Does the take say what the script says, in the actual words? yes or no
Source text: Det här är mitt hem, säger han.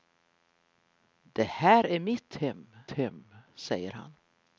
no